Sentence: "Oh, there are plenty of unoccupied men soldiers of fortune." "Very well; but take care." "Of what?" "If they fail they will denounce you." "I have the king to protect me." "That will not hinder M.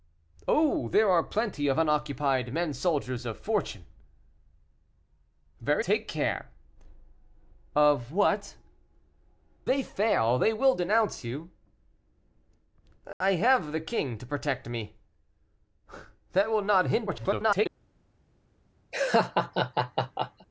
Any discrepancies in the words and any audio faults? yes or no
yes